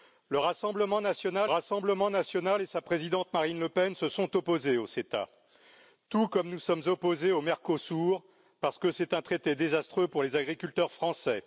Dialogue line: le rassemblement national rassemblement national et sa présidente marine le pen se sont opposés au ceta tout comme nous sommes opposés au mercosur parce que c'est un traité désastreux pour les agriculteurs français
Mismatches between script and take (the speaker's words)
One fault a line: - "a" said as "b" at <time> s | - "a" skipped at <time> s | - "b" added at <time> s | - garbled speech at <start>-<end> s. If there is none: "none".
none